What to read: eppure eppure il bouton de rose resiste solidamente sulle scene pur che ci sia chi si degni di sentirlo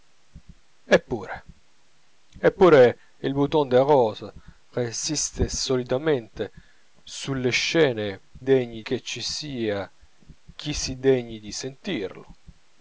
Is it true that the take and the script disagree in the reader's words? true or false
true